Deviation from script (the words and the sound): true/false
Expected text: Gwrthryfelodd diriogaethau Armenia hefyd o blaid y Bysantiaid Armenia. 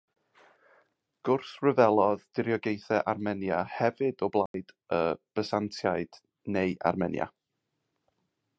true